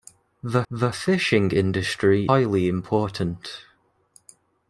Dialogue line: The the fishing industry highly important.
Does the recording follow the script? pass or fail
pass